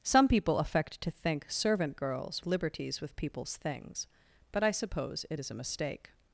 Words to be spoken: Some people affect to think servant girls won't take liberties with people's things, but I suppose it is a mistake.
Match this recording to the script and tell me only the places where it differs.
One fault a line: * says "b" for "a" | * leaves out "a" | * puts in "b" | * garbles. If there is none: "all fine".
* leaves out "won't take"